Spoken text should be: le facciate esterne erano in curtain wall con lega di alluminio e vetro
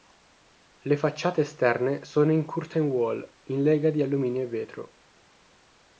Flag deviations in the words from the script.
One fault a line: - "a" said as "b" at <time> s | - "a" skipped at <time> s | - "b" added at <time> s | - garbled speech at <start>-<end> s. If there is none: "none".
- "erano" said as "sono" at 2.0 s
- "con" said as "in" at 3.5 s